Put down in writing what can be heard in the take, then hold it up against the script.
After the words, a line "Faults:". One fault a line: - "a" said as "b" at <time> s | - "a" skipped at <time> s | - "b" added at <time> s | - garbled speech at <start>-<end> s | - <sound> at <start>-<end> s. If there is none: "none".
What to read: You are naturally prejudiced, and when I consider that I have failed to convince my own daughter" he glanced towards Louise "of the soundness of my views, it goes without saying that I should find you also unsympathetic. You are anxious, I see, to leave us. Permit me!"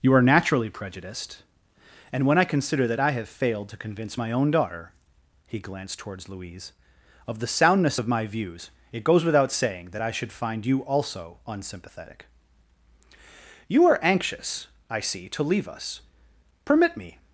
You are naturally prejudiced, and when I consider that I have failed to convince my own daughter" he glanced towards Louise "of the soundness of my views, it goes without saying that I should find you also unsympathetic. You are anxious, I see, to leave us. Permit me!"
Faults:
none